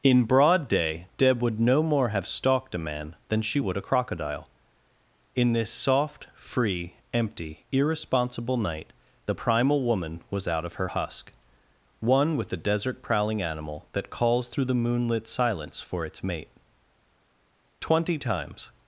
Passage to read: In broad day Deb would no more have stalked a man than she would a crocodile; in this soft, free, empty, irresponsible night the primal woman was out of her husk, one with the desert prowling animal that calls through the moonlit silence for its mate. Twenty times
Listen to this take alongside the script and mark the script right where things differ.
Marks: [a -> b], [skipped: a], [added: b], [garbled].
In broad day Deb would no more have stalked a man than she would a crocodile; in this soft, free, empty, irresponsible night the primal woman was out of her husk, one with the desert prowling animal that calls through the moonlit silence for its mate. Twenty times